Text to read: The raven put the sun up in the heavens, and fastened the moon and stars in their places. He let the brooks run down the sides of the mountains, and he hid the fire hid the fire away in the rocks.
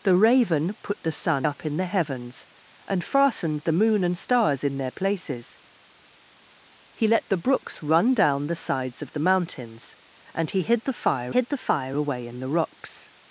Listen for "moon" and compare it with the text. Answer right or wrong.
right